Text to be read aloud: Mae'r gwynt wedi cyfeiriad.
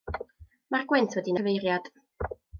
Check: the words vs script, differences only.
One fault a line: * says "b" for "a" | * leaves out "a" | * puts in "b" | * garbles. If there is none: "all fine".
all fine